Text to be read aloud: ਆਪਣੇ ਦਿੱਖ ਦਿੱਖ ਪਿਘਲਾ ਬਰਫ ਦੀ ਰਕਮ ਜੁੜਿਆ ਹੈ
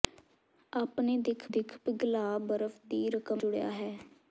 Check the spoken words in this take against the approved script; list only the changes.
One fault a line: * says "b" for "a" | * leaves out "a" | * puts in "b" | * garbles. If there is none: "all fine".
all fine